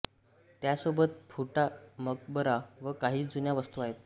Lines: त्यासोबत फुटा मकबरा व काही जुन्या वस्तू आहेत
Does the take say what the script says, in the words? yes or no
yes